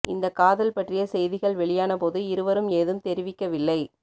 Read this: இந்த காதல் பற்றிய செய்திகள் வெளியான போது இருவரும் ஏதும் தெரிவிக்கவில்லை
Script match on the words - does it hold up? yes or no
yes